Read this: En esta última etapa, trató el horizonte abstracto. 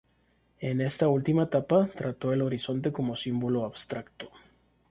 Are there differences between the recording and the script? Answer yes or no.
yes